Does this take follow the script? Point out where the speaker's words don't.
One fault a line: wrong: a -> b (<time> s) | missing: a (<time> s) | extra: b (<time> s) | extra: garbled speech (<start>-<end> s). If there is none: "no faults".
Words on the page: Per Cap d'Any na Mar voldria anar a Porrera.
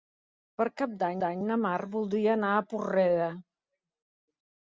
extra: d'Any (1.2 s)